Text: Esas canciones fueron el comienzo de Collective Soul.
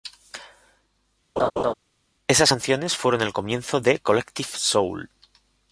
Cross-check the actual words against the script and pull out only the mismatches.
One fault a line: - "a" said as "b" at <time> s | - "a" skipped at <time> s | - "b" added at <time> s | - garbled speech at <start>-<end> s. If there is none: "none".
none